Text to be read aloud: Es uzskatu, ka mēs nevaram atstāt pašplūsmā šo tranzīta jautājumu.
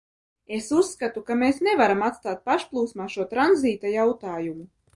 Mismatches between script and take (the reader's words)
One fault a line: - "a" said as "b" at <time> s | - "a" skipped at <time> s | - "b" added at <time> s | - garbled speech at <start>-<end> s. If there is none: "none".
none